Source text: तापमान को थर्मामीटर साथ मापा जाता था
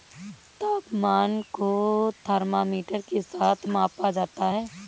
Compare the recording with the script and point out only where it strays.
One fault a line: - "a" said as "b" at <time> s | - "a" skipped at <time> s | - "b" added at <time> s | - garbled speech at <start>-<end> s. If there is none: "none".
- "के" added at 3.1 s
- "था" said as "है" at 4.5 s